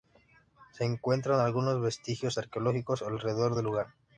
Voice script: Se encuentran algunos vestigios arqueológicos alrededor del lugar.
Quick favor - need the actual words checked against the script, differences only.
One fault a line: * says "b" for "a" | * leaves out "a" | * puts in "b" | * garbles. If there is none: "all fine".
all fine